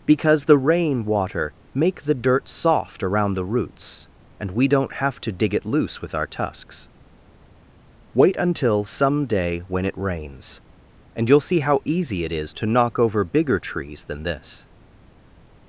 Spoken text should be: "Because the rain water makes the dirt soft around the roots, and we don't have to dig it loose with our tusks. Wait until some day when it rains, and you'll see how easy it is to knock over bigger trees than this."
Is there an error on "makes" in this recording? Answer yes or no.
yes